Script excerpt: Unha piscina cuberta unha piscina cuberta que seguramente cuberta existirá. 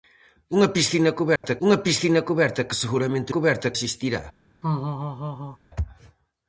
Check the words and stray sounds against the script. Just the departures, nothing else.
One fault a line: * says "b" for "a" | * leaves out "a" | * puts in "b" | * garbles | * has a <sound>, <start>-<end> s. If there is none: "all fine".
* has a dropout, 1.4-1.4 s
* has a laugh, 4.6-5.6 s